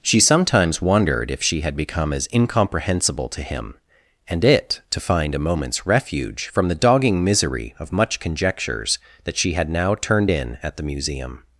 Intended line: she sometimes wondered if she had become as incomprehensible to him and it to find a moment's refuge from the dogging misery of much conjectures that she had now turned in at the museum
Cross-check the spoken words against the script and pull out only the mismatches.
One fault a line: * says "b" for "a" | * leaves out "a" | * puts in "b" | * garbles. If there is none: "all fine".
all fine